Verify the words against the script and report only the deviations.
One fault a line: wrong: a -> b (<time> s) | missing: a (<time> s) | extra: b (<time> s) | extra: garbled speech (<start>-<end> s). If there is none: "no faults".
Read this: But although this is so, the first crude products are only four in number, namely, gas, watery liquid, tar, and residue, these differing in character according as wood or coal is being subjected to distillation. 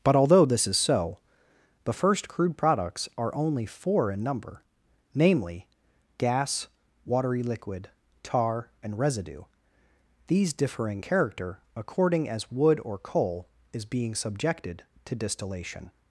missing: in (11.0 s)